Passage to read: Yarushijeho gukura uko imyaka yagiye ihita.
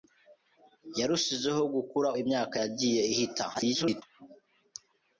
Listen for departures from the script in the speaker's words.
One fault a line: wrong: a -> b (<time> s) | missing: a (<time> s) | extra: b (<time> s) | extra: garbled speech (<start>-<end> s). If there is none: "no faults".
missing: uko (2.1 s)
extra: garbled speech (3.5-4.0 s)